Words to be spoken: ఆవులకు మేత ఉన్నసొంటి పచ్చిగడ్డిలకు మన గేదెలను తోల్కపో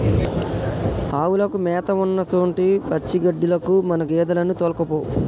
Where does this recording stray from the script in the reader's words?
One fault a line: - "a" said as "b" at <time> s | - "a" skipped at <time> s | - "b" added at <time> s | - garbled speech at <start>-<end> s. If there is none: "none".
none